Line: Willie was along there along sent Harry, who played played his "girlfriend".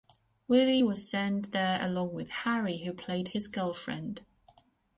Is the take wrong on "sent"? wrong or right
wrong